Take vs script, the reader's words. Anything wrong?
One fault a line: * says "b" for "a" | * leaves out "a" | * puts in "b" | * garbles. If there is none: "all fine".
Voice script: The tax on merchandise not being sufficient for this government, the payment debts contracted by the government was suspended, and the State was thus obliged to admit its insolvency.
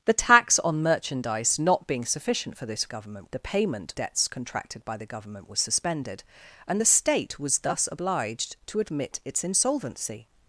all fine